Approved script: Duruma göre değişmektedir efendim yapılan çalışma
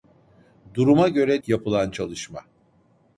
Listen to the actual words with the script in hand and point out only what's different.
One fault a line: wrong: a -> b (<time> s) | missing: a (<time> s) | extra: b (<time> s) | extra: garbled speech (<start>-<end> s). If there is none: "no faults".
missing: değişmektedir efendim (1.4 s)